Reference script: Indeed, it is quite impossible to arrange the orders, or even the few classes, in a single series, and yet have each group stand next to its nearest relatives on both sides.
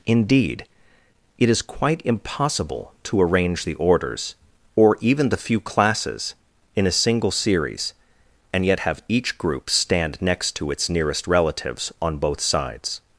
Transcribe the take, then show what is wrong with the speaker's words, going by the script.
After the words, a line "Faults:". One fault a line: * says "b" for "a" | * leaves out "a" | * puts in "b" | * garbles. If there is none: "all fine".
Indeed, it is quite impossible to arrange the orders, or even the few classes, in a single series, and yet have each group stand next to its nearest relatives on both sides.
Faults:
all fine